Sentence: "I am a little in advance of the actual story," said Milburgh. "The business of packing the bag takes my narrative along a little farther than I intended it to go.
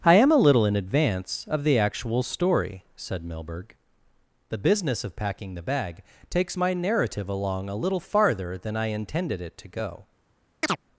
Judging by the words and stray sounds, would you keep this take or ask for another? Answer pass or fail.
fail